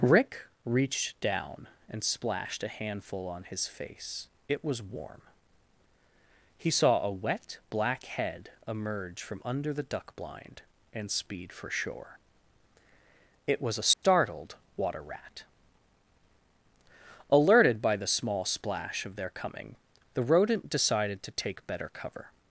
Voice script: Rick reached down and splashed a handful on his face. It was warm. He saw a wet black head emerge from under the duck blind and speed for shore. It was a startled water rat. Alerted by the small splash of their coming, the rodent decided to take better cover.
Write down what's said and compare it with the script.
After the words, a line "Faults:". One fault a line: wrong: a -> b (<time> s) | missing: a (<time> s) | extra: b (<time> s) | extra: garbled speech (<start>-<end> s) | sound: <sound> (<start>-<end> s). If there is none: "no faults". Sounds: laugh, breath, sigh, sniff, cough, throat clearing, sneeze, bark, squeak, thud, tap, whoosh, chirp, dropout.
Rick reached down and splashed a handful on his face. It was warm. He saw a wet black head emerge from under the duck blind and speed for shore. It was a startled water rat. Alerted by the small splash of their coming, the rodent decided to take better cover.
Faults:
sound: dropout (13.9-14.0 s)